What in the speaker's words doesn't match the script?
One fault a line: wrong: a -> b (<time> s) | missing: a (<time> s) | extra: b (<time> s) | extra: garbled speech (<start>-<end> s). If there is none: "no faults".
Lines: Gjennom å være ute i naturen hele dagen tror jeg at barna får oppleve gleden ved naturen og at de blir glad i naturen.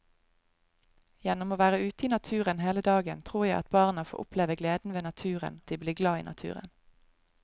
missing: og (5.6 s)